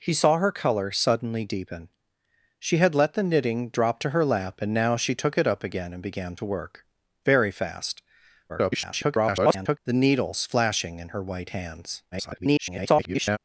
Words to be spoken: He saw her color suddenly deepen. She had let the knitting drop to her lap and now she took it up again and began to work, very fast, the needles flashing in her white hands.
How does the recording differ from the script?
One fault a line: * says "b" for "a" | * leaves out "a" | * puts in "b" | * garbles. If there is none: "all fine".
* garbles
* garbles